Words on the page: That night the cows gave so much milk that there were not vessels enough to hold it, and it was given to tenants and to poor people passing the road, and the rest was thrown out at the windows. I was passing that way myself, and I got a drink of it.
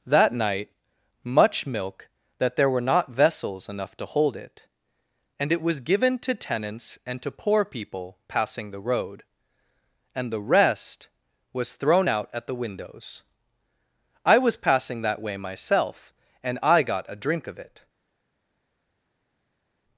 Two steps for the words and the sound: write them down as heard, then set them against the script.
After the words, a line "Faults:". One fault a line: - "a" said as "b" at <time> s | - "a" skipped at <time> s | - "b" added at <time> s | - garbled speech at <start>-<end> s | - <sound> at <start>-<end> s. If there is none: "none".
That night much milk that there were not vessels enough to hold it, and it was given to tenants and to poor people passing the road, and the rest was thrown out at the windows. I was passing that way myself, and I got a drink of it.
Faults:
- "the cows gave so" skipped at 0.7 s